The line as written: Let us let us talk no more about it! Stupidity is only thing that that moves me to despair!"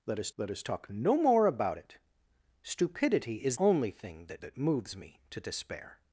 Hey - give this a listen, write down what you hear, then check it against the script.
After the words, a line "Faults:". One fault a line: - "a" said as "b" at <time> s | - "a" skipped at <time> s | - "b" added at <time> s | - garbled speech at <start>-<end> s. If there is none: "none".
Let us let us talk no more about it! Stupidity is only thing that that moves me to despair!"
Faults:
none